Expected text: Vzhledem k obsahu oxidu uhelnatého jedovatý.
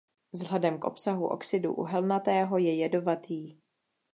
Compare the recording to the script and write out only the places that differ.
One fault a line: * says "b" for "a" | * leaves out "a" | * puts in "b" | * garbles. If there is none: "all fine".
* puts in "je"